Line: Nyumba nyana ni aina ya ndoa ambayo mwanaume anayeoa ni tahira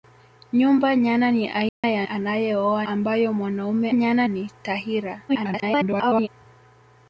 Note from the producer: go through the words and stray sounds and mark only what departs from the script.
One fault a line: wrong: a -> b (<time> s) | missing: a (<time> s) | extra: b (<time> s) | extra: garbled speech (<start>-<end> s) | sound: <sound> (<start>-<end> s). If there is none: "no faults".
sound: dropout (1.7-1.8 s)
wrong: ndoa -> anayeoa (2.0 s)
wrong: anayeoa -> nyana (3.9 s)
extra: garbled speech (5.3-6.3 s)